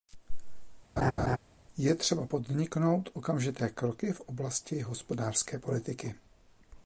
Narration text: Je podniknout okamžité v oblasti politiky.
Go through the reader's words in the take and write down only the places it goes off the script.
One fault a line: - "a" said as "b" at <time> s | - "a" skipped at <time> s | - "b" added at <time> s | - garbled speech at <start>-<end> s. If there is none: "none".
- "třeba" added at 1.9 s
- "kroky" added at 3.7 s
- "hospodářské" added at 4.8 s